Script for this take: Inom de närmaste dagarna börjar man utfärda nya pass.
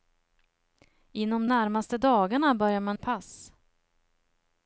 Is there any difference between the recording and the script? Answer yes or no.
yes